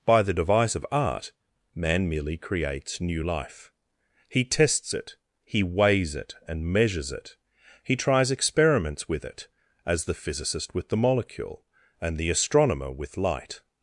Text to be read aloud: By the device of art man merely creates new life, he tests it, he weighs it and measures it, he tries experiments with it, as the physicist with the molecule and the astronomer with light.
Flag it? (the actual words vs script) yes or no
no